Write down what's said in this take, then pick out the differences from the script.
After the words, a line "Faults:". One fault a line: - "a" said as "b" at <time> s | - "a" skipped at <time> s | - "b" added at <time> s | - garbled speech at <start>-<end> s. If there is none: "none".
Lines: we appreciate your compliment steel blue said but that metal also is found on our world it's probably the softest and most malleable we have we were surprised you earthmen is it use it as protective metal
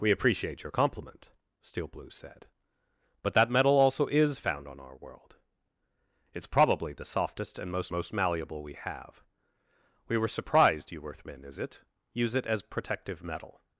we appreciate your compliment steel blue said but that metal also is found on our world it's probably the softest and most most malleable we have we were surprised you earthmen is it use it as protective metal
Faults:
- "most" added at 7.9 s